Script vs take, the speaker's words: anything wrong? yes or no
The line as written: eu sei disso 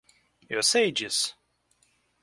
no